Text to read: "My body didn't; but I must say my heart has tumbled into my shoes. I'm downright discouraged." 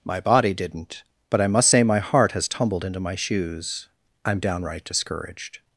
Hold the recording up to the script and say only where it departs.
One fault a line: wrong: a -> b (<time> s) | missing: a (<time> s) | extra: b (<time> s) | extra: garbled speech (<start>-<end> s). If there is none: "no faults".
no faults